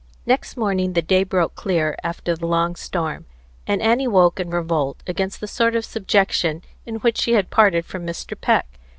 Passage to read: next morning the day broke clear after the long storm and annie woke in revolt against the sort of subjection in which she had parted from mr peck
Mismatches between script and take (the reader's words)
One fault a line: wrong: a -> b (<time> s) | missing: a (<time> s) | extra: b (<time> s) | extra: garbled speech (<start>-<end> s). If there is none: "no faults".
no faults